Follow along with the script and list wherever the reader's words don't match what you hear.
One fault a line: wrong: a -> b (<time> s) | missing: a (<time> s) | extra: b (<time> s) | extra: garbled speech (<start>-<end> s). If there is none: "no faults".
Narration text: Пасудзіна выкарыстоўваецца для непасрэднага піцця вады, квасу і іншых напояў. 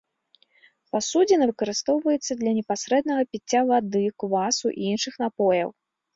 no faults